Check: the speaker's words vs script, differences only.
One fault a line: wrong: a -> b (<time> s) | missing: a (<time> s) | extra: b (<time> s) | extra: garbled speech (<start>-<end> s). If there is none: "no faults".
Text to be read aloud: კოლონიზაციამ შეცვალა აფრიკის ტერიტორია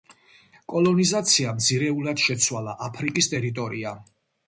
extra: ძირეულად (1.7 s)